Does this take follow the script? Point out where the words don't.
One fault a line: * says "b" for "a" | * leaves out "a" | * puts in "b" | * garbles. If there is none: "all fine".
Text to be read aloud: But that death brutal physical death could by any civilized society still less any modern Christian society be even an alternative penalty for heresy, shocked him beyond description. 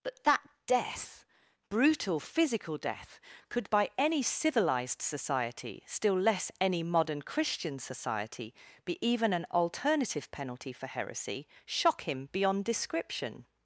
* says "shock" for "shocked"